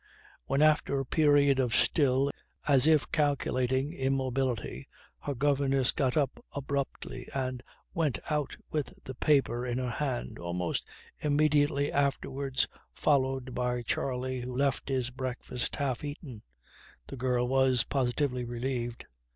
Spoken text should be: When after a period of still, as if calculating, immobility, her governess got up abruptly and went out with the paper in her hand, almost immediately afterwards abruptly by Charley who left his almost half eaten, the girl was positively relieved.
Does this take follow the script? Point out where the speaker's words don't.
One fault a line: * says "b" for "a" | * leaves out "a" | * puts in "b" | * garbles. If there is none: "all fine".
* says "followed" for "abruptly"
* says "breakfast" for "almost"